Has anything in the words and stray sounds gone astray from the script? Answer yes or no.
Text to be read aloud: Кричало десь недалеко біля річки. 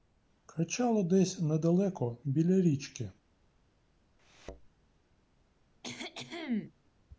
yes